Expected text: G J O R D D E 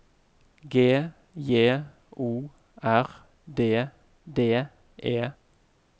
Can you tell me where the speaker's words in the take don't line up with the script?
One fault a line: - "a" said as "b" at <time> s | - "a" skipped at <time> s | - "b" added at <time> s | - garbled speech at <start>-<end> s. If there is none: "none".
none